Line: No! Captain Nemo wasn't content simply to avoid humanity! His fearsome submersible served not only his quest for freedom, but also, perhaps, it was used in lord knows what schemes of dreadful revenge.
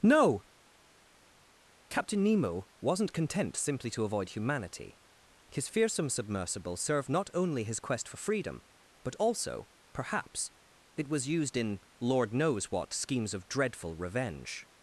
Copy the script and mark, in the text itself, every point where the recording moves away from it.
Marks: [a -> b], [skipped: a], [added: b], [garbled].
No! Captain Nemo wasn't content simply to avoid humanity! His fearsome submersible served not only his quest for freedom, but also, perhaps, it was used in lord knows what schemes of dreadful revenge.